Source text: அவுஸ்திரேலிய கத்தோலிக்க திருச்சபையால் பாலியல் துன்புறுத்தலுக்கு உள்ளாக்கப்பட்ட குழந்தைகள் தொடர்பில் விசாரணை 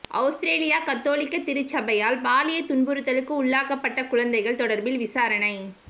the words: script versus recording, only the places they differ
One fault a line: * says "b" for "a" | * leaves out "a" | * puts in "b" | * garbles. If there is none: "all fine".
all fine